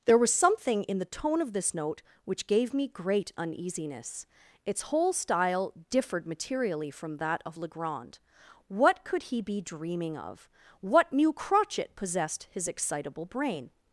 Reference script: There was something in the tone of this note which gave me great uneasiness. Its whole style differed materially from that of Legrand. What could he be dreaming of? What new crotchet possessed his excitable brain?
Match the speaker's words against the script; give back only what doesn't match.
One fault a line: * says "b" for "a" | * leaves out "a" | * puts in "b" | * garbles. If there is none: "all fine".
all fine